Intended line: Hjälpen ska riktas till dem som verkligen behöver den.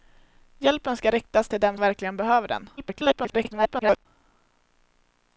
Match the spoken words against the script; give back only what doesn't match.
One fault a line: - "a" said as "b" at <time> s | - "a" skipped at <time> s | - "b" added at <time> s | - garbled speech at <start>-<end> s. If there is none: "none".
- "som" skipped at 1.8 s
- garbled speech at 2.8-4.1 s